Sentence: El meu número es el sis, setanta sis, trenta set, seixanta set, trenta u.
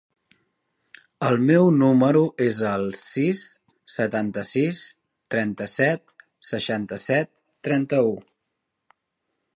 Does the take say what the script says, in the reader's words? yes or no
yes